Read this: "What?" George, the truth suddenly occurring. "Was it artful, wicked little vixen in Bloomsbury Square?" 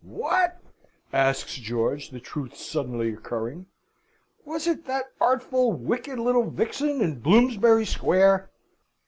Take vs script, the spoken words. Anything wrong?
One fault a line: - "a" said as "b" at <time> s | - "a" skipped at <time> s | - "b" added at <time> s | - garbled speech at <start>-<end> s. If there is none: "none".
- "asks" added at 1.1 s
- "that" added at 4.9 s